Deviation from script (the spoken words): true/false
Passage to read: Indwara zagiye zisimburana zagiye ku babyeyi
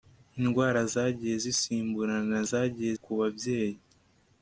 false